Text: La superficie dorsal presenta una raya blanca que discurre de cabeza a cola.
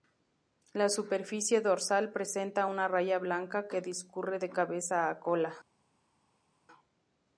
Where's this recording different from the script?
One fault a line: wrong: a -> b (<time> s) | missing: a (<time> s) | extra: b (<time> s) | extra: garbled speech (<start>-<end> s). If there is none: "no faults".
no faults